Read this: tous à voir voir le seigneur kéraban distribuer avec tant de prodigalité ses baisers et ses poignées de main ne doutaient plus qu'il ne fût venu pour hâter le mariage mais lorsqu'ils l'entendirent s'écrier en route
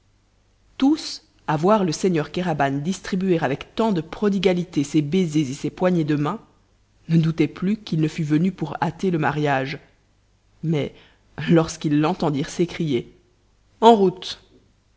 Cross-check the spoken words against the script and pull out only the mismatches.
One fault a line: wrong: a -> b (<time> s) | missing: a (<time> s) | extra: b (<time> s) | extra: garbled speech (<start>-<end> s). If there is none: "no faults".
missing: voir (1.8 s)